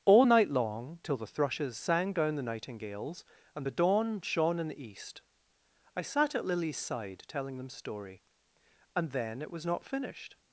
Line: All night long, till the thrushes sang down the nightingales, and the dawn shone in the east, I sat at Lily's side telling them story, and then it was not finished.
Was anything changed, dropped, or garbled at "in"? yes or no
no